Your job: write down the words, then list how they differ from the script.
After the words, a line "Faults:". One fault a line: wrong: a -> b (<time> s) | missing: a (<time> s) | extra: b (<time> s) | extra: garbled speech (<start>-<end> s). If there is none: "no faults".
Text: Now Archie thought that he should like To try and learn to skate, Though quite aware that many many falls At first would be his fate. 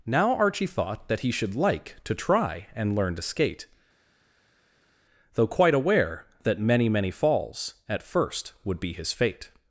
Now Archie thought that he should like To try and learn to skate, Though quite aware that many many falls At first would be his fate.
Faults:
no faults